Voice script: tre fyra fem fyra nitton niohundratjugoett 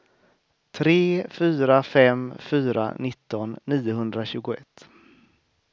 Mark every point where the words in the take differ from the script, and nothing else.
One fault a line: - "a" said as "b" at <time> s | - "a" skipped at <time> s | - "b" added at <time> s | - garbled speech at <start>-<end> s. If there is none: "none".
none